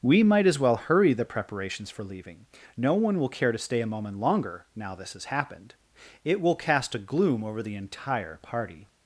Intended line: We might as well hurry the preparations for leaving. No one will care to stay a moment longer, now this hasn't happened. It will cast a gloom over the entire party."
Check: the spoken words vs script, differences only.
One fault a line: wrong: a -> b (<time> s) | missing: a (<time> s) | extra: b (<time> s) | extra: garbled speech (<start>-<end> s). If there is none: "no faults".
wrong: hasn't -> has (5.1 s)